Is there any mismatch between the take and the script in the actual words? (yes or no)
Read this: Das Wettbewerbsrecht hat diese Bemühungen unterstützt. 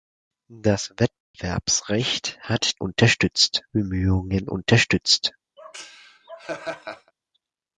yes